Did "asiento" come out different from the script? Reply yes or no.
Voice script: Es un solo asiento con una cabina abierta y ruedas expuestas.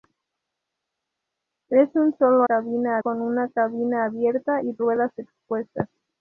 yes